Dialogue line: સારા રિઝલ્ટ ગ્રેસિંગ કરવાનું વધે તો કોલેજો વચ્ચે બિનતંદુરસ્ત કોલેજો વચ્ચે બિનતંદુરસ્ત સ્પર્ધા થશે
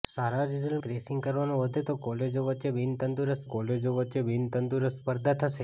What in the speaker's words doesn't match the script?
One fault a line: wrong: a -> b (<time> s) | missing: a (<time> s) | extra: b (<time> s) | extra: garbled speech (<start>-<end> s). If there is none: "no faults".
no faults